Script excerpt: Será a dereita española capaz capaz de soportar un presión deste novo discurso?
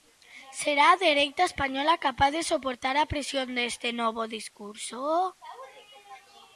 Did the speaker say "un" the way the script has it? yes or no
no